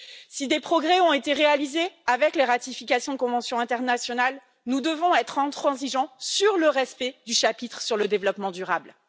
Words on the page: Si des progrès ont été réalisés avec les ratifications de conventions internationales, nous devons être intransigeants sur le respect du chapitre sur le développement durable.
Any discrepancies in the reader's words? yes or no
no